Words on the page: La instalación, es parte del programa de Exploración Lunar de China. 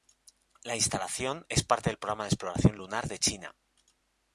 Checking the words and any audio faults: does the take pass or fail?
pass